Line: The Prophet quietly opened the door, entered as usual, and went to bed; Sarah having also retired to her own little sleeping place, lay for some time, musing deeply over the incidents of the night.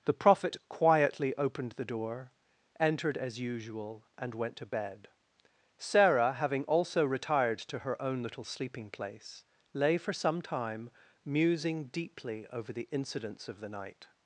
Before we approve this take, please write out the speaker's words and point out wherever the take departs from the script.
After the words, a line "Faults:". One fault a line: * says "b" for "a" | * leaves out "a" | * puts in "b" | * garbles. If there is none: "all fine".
The Prophet quietly opened the door, entered as usual, and went to bed; Sarah having also retired to her own little sleeping place, lay for some time, musing deeply over the incidents of the night.
Faults:
all fine